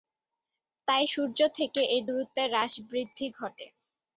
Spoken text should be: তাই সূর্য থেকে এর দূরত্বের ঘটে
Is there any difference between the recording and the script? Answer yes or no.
yes